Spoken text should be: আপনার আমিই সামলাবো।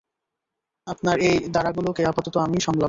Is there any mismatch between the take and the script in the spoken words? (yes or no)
yes